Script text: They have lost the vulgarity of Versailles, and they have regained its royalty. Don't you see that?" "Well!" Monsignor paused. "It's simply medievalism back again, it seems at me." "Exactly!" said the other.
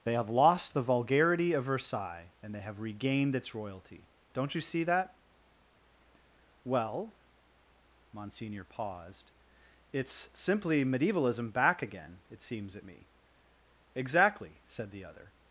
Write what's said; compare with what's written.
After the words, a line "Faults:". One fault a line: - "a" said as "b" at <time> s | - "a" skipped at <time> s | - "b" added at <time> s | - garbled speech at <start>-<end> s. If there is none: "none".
They have lost the vulgarity of Versailles, and they have regained its royalty. Don't you see that?" "Well!" Monsignor paused. "It's simply medievalism back again, it seems at me." "Exactly!" said the other.
Faults:
none